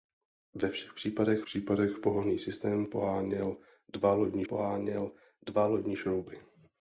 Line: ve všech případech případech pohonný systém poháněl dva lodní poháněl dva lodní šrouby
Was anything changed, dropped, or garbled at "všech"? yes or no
no